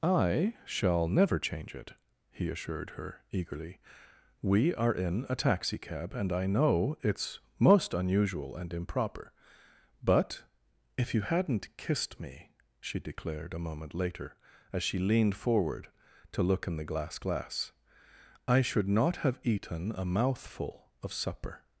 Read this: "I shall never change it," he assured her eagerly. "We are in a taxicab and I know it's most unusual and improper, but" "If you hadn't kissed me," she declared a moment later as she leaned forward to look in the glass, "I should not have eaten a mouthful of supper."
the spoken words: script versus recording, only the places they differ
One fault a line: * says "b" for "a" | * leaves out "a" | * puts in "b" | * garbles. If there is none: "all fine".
* puts in "glass"